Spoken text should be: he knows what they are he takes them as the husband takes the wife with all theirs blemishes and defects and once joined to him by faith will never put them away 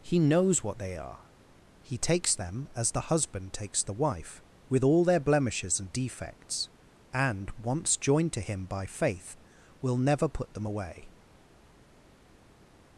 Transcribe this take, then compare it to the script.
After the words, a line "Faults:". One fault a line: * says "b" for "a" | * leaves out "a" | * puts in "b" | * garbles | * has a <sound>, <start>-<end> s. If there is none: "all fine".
he knows what they are he takes them as the husband takes the wife with all their blemishes and defects and once joined to him by faith will never put them away
Faults:
* says "their" for "theirs"